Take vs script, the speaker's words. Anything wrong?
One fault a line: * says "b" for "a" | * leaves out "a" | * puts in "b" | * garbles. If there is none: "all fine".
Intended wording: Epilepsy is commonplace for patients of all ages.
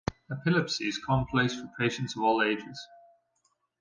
all fine